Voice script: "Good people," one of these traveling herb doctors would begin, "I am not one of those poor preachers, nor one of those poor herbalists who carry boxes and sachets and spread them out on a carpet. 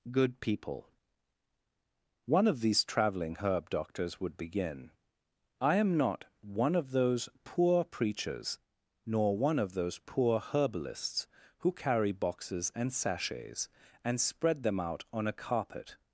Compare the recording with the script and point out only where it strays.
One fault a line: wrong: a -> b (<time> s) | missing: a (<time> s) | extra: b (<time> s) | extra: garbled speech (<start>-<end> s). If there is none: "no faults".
no faults